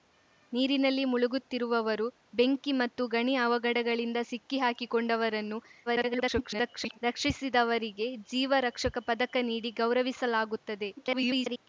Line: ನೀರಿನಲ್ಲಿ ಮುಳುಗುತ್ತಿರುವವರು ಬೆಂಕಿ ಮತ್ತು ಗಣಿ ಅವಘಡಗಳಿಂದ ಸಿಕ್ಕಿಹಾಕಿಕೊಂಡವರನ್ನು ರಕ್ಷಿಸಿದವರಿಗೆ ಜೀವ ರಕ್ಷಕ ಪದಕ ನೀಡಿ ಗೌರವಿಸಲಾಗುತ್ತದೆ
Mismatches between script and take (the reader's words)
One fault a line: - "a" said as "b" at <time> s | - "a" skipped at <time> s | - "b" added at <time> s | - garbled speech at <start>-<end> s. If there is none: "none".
- garbled speech at 5.9-7.0 s
- garbled speech at 11.0-11.7 s